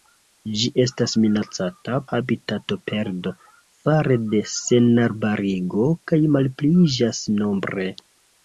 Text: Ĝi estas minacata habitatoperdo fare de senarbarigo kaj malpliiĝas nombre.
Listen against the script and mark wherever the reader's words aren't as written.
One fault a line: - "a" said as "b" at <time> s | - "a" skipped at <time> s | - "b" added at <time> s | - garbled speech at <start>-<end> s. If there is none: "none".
none